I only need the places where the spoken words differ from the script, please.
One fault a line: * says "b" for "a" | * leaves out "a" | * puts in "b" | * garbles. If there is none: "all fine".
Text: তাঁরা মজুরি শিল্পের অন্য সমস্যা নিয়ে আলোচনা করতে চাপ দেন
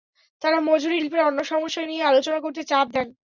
all fine